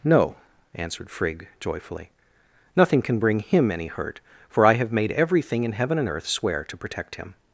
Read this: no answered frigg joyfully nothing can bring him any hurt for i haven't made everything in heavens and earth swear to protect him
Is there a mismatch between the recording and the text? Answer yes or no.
yes